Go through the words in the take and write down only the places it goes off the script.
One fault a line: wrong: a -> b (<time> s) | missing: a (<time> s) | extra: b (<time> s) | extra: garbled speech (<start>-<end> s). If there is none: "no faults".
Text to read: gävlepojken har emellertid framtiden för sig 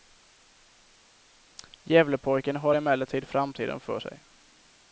no faults